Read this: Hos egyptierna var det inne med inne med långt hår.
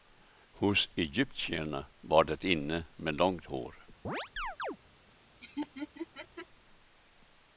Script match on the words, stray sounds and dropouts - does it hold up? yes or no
no